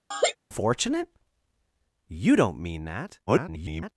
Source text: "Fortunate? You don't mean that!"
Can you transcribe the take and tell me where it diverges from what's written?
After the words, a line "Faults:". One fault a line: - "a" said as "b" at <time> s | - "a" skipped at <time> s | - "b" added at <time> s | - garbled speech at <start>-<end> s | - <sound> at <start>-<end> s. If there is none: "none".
"Fortunate? You don't mean that!" [garbled]
Faults:
- laugh at 0.1-0.4 s
- garbled speech at 3.3-3.9 s